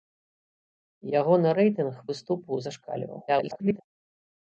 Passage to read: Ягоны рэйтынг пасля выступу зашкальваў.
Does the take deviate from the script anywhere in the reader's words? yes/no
yes